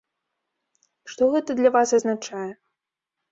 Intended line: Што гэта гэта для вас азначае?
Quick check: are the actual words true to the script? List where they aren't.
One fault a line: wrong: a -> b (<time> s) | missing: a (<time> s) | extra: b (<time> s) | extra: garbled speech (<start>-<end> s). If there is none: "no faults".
missing: гэта (1.6 s)